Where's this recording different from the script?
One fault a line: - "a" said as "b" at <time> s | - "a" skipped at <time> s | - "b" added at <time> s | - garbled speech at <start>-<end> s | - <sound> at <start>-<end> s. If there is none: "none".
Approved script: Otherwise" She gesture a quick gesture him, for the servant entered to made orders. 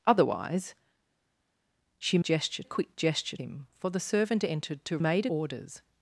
none